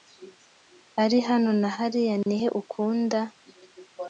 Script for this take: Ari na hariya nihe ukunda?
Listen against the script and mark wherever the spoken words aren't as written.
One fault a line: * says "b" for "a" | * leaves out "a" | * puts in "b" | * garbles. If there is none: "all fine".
* puts in "hano"